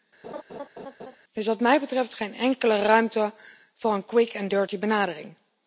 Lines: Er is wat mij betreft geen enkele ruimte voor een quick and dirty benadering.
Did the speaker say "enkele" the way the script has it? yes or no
yes